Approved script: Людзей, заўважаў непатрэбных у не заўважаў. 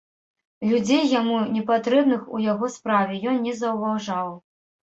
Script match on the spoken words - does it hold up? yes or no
no